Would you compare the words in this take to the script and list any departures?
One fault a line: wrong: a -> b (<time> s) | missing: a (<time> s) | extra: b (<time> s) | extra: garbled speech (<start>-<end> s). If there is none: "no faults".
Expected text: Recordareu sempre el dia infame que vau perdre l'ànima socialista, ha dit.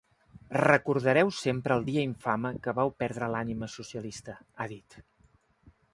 no faults